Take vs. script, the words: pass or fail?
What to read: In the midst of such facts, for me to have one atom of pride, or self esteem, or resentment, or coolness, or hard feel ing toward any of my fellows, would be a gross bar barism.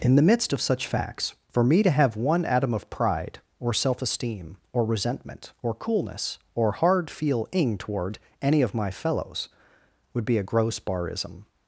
fail